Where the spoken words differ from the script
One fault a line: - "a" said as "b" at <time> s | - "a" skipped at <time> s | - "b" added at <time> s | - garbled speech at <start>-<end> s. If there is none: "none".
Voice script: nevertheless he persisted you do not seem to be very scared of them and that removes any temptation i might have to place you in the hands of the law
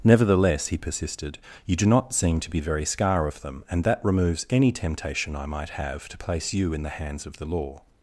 - "scared" said as "scar" at 2.9 s